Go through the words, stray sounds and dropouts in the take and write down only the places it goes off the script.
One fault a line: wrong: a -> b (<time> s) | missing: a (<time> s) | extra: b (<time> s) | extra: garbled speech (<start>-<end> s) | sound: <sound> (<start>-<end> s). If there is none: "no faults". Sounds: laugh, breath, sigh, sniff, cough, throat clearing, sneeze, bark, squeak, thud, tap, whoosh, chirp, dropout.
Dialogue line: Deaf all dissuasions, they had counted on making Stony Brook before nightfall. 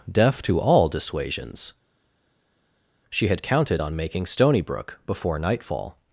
extra: to (0.4 s)
wrong: they -> she (3.1 s)